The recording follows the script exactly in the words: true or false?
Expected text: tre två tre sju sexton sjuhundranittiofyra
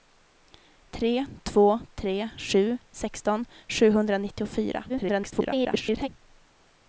false